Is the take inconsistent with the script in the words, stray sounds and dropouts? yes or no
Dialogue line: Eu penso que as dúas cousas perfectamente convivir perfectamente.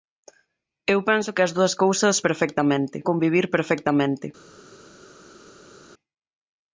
no